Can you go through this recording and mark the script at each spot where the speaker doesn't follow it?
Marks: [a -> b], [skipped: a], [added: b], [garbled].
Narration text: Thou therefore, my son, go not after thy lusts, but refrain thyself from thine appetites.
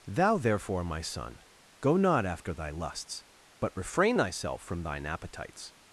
Thou therefore, my son, go not after thy lusts, but refrain thyself from thine appetites.